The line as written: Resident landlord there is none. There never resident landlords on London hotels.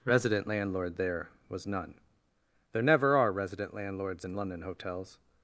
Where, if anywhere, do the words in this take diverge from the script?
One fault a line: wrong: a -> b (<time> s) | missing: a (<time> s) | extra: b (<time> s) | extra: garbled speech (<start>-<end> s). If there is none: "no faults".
wrong: is -> was (1.5 s)
extra: are (3.2 s)
wrong: on -> in (4.2 s)